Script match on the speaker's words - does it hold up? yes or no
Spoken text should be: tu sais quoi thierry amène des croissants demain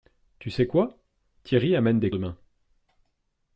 no